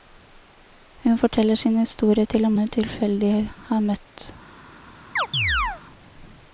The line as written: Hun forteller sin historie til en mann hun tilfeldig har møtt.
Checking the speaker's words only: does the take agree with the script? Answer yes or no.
no